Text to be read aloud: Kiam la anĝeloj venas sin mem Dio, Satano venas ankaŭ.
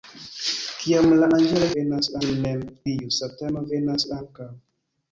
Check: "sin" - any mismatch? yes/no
no